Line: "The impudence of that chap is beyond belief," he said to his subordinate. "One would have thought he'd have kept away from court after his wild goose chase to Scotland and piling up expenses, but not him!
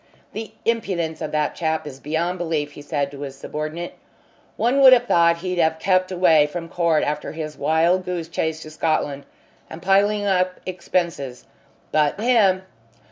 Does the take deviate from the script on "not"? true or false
true